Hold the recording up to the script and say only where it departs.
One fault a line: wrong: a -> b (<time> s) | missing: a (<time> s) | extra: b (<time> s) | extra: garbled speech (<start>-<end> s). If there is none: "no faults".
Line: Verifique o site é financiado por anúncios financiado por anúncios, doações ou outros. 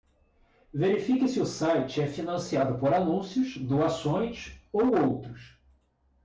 extra: se (1.3 s)
missing: financiado por anúncios (3.6 s)